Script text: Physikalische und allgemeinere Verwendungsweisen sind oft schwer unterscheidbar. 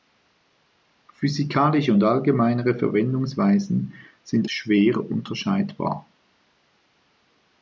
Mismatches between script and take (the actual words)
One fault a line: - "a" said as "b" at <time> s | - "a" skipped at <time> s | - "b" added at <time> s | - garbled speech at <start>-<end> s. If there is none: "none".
- "oft" skipped at 4.5 s